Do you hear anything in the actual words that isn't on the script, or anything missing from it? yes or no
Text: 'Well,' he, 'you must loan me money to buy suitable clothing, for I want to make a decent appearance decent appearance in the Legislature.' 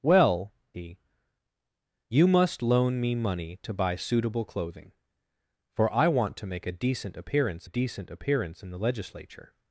no